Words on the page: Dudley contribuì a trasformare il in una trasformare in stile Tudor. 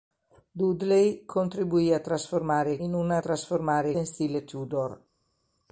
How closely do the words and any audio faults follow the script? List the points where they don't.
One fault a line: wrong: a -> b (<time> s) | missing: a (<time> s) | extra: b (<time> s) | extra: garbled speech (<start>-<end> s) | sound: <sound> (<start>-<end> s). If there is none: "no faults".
no faults